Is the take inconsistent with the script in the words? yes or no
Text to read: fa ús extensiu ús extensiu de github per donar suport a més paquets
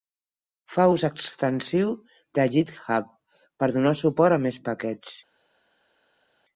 yes